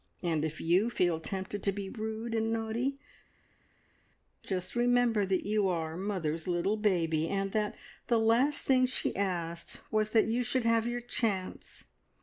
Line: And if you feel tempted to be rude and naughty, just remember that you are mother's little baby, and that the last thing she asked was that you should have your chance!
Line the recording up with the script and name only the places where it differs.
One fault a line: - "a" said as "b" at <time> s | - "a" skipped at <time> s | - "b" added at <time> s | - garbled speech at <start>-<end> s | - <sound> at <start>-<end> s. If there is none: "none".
none